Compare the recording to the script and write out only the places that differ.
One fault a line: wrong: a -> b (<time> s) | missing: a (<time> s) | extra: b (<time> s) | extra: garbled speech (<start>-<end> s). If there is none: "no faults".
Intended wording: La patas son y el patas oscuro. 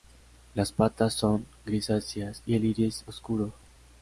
wrong: La -> Las (0.6 s)
extra: grisáceas (1.6 s)
wrong: patas -> iris (2.7 s)